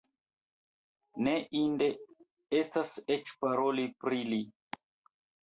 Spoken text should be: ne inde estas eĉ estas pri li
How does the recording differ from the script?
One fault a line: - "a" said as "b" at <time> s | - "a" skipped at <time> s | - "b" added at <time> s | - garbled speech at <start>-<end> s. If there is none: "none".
- "estas" said as "paroli" at 3.5 s